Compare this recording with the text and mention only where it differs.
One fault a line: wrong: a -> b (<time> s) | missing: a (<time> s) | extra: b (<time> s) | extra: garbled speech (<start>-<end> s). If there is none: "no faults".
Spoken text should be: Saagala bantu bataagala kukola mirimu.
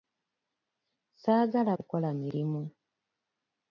missing: bantu bataagala (1.7 s)